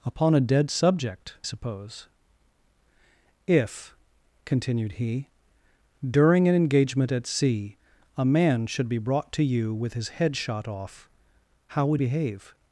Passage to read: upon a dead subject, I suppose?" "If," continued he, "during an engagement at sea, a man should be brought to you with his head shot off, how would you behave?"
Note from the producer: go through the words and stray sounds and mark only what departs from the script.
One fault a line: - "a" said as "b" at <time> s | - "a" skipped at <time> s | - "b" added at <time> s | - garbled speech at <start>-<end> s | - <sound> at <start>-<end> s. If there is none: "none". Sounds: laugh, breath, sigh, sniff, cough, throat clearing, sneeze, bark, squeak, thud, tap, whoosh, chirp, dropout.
- "I" skipped at 1.4 s
- "you" skipped at 12.0 s